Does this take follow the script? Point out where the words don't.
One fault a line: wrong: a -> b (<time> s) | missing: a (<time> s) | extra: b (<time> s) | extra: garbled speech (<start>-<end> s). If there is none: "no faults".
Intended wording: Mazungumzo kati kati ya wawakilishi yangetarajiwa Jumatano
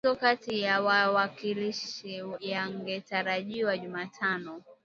missing: kati (0.6 s)